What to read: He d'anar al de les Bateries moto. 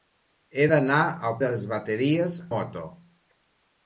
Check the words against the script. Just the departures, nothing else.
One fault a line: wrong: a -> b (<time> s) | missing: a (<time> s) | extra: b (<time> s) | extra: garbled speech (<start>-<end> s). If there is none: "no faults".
no faults